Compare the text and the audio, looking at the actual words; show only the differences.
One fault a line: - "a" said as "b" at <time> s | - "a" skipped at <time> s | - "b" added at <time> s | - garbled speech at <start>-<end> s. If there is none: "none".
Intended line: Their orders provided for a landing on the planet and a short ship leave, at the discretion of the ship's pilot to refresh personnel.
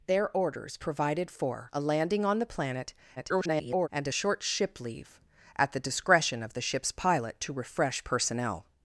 - garbled speech at 3.2-3.9 s